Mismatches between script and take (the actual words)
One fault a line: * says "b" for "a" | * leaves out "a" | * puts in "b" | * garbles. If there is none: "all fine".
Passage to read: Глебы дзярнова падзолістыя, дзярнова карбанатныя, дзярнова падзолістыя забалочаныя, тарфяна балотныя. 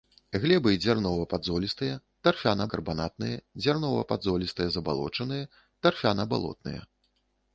* says "тарфяна" for "дзярнова"